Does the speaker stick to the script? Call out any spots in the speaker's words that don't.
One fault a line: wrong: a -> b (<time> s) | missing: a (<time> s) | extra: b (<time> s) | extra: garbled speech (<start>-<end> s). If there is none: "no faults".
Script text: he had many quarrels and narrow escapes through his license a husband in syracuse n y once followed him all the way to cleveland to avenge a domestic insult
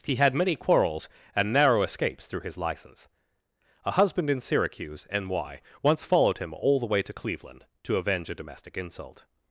no faults